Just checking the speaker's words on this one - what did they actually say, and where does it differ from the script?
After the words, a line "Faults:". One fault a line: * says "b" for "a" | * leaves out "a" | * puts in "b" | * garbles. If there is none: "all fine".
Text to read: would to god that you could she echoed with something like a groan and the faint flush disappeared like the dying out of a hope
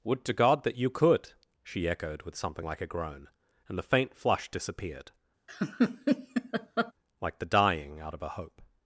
would to god that you could she echoed with something like a groan and the faint flush disappeared like the dying out of a hope
Faults:
all fine